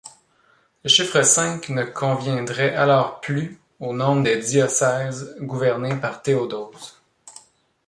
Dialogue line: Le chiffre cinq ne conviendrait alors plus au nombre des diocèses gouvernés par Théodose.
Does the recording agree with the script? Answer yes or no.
yes